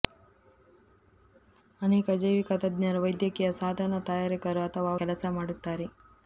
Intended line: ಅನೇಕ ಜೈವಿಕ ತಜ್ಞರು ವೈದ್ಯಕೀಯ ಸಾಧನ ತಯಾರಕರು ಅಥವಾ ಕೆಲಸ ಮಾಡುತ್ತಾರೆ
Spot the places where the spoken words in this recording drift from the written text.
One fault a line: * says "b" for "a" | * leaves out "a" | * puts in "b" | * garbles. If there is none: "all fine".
all fine